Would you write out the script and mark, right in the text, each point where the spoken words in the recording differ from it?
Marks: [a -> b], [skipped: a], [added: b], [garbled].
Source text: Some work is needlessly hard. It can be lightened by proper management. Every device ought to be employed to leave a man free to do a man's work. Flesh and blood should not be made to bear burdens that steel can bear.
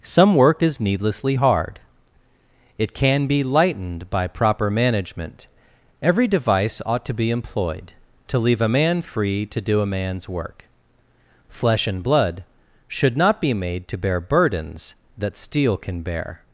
Some work is needlessly hard. It can be lightened by proper management. Every device ought to be employed to leave a man free to do a man's work. Flesh and blood should not be made to bear burdens that steel can bear.